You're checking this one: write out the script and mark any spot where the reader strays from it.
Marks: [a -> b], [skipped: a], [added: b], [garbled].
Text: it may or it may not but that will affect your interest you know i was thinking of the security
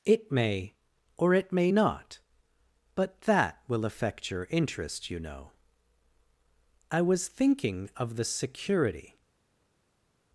it may or it may not but that will affect your interest you know i was thinking of the security